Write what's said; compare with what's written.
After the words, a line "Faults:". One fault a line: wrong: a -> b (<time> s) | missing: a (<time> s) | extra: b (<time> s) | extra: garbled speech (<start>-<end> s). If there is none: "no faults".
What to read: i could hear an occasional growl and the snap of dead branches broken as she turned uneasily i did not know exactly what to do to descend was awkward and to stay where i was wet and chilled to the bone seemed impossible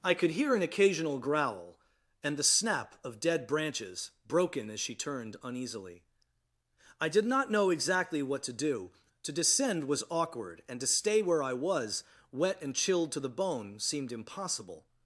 i could hear an occasional growl and the snap of dead branches broken as she turned uneasily i did not know exactly what to do to descend was awkward and to stay where i was wet and chilled to the bone seemed impossible
Faults:
no faults